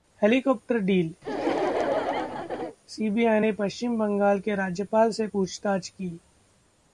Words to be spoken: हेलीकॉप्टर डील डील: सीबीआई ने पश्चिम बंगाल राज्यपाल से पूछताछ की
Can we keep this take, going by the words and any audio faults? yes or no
no